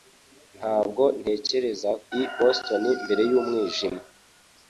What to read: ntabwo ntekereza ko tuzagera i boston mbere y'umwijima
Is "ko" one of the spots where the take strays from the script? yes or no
yes